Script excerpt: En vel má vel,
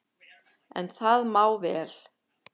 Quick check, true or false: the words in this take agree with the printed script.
false